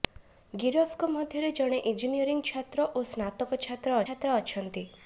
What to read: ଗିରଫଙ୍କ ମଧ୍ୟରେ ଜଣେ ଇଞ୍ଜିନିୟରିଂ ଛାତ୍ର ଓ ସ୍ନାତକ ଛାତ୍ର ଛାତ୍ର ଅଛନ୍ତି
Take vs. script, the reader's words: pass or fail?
pass